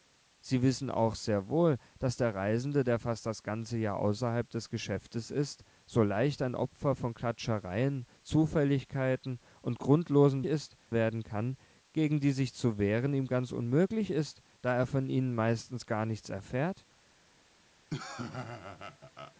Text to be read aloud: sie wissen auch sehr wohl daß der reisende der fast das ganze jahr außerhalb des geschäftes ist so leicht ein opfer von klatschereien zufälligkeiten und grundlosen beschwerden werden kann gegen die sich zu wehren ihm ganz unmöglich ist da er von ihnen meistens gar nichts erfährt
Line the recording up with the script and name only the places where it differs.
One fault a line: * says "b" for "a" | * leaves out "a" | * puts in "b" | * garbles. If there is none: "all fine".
* says "ist" for "beschwerden"